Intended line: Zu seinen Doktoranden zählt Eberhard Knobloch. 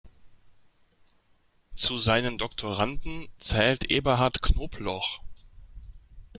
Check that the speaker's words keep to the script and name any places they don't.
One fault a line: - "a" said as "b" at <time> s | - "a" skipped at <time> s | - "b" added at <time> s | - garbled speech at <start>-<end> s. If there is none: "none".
none